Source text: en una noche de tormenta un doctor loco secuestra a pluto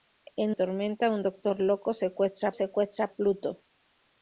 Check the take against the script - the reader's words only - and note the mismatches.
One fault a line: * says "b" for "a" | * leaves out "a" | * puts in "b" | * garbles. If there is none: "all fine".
* leaves out "una noche de"
* puts in "secuestra"